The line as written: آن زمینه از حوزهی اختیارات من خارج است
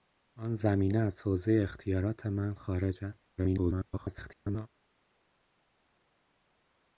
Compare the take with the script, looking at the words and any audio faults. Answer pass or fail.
fail